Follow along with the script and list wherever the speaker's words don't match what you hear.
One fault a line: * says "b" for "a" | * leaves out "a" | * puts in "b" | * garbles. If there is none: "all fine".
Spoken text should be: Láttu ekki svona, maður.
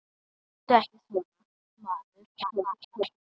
* garbles